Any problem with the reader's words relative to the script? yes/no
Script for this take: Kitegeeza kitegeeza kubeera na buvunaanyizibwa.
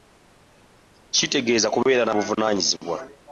yes